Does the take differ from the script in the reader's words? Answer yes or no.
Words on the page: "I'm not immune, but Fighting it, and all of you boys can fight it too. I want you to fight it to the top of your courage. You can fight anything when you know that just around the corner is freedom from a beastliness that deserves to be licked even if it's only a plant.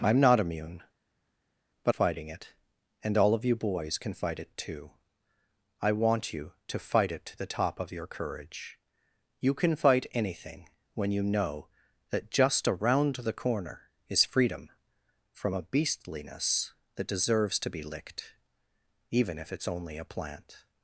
no